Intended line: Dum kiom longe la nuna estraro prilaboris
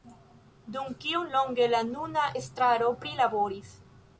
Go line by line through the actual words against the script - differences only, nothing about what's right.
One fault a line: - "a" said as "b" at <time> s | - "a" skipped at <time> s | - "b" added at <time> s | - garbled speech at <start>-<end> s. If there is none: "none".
none